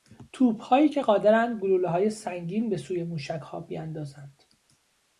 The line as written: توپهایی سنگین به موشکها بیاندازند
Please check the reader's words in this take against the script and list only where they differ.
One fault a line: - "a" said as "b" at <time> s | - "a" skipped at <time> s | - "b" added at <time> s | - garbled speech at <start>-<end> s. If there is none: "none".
- "که قادرند گلولههای" added at 0.9 s
- "سوی" added at 2.8 s